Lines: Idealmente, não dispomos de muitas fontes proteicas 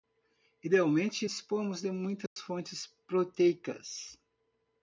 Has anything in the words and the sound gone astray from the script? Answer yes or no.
yes